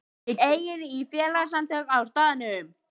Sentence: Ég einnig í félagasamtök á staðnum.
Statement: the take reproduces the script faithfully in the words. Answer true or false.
true